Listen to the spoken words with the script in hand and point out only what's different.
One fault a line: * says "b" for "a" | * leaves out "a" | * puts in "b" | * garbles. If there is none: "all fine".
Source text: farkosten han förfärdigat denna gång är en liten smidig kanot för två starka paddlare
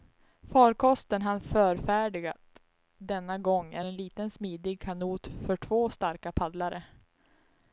all fine